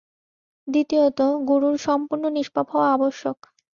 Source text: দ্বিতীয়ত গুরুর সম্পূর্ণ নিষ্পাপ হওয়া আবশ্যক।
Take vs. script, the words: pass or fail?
pass